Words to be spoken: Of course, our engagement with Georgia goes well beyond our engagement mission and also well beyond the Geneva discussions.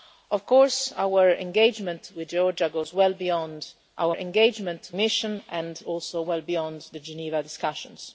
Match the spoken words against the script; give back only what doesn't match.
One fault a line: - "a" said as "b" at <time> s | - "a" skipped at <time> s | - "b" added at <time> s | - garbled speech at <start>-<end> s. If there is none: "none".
none